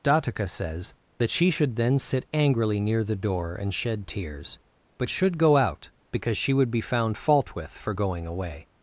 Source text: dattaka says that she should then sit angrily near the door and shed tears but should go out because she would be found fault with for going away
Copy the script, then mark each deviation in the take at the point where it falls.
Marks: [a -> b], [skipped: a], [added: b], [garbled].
dattaka says that she should then sit angrily near the door and shed tears but should go out because she would be found fault with for going away